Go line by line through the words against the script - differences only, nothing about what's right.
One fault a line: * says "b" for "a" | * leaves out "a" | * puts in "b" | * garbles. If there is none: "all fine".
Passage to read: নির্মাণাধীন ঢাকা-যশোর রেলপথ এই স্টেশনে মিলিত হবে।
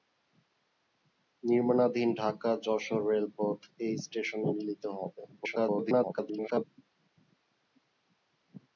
* garbles